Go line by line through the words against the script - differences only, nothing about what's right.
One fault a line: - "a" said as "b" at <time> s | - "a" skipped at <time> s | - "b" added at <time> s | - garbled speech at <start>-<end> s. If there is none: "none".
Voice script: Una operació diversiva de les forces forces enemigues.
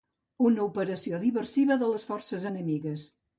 - "forces" skipped at 2.5 s